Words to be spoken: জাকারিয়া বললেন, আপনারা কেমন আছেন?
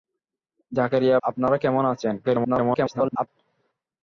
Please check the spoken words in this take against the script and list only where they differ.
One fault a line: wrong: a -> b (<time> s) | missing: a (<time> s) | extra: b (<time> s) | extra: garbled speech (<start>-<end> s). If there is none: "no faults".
missing: বললেন (1.2 s)
extra: garbled speech (2.2-3.3 s)